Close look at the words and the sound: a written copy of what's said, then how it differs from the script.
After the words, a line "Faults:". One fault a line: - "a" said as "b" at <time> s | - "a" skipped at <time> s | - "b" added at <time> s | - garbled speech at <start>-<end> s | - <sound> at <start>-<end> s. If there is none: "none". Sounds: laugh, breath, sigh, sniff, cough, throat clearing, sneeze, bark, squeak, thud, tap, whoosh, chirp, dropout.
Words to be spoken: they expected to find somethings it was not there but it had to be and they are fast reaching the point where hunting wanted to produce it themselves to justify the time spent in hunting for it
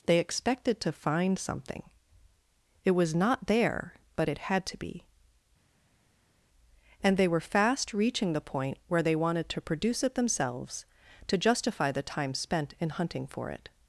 they expected to find something it was not there but it had to be and they were fast reaching the point where they wanted to produce it themselves to justify the time spent in hunting for it
Faults:
- "somethings" said as "something" at 1.4 s
- "are" said as "were" at 7.3 s
- "hunting" said as "they" at 9.0 s